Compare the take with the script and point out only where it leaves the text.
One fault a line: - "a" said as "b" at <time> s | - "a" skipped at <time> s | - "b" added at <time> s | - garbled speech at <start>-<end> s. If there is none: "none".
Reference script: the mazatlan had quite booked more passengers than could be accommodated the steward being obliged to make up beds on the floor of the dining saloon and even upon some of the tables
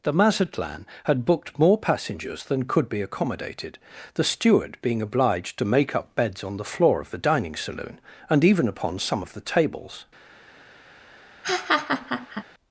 - "quite" skipped at 1.2 s